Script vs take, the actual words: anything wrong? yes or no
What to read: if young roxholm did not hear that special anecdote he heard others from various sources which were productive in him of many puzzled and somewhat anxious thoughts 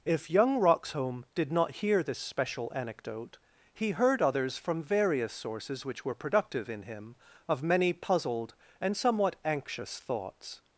yes